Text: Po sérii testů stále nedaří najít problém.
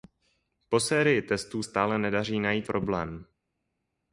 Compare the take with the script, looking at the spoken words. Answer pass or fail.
pass